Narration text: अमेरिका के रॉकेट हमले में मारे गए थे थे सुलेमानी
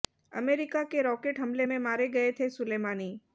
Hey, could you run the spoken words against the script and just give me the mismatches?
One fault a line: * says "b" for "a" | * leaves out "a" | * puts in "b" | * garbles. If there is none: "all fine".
* leaves out "थे"